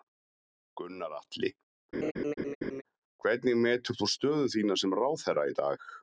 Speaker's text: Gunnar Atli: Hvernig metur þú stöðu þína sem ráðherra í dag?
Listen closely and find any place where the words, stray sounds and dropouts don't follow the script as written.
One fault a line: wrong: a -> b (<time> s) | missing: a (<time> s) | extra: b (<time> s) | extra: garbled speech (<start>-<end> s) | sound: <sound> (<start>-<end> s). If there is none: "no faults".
sound: laugh (1.9-2.8 s)